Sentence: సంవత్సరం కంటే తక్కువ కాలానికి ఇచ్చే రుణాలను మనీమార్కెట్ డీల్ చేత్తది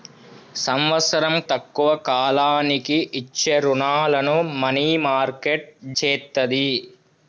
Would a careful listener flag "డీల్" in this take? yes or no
yes